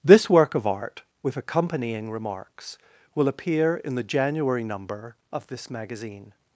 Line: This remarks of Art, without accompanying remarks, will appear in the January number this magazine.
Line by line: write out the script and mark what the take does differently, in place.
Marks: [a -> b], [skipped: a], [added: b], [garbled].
This [remarks -> work] of Art, [without -> with] accompanying remarks, will appear in the January number [added: of] this magazine.